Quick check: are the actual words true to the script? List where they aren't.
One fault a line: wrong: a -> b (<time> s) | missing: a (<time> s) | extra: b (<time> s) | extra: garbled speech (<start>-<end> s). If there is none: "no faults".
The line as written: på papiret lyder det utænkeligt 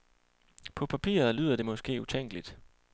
extra: måske (1.6 s)